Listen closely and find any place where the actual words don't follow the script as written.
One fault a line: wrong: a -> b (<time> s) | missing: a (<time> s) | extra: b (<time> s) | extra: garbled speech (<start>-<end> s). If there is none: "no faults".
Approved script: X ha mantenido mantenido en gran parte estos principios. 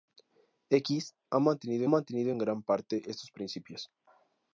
no faults